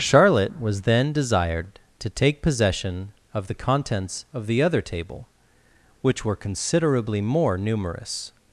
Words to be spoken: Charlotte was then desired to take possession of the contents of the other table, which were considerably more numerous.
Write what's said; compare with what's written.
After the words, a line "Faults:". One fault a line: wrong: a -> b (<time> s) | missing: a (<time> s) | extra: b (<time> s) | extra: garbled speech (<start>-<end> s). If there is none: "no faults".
Charlotte was then desired to take possession of the contents of the other table, which were considerably more numerous.
Faults:
no faults